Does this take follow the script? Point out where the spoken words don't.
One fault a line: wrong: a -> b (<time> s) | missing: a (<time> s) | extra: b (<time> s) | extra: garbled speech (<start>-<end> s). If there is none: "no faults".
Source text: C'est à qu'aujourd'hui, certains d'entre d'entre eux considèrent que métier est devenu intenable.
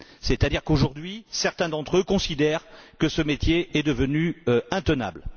extra: dire (0.5 s)
missing: d'entre (2.0 s)
extra: ce (3.1 s)